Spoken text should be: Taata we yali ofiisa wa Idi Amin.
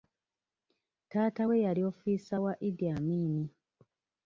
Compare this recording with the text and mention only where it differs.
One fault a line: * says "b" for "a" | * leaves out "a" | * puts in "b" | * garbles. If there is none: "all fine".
all fine